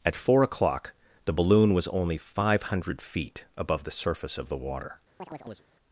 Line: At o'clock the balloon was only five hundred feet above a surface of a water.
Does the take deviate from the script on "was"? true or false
false